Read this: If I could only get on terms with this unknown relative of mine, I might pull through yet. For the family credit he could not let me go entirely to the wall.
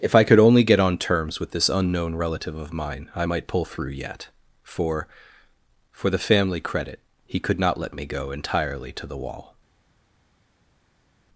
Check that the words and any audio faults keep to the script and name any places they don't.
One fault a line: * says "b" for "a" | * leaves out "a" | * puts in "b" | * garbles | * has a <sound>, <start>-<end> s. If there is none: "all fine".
* puts in "For"